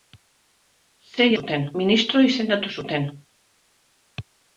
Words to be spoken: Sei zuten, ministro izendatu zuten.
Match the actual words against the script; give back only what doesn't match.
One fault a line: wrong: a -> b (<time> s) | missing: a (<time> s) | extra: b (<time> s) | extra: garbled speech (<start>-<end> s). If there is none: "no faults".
no faults